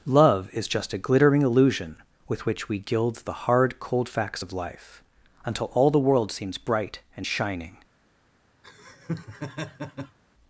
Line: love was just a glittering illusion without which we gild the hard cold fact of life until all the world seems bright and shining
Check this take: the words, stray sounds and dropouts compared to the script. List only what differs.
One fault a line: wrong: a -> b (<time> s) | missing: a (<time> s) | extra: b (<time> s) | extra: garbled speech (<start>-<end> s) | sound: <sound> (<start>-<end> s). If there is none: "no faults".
wrong: was -> is (0.5 s)
wrong: without -> with (2.3 s)
wrong: fact -> facts (4.1 s)
sound: laugh (8.6-10.2 s)